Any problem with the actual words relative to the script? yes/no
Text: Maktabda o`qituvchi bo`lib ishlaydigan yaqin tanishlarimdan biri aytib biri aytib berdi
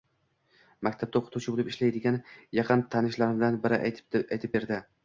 yes